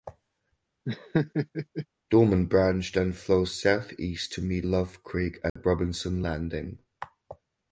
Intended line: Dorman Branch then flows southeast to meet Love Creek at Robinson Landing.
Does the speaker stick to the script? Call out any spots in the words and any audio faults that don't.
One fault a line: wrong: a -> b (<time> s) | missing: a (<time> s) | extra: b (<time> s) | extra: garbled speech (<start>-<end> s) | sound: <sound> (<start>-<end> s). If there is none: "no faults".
sound: laugh (0.9-1.9 s)
sound: dropout (5.5-5.6 s)